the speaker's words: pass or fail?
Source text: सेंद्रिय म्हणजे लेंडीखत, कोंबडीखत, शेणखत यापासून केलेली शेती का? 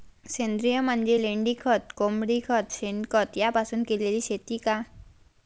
pass